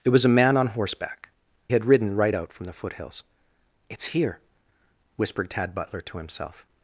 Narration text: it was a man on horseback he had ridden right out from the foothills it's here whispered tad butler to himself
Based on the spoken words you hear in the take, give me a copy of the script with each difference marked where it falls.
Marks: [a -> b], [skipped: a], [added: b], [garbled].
it was a man on horseback [skipped: he] had ridden right out from the foothills it's here whispered tad butler to himself